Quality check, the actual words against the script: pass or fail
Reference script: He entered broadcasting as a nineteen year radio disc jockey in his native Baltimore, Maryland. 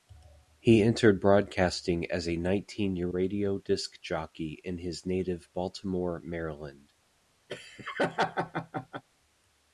pass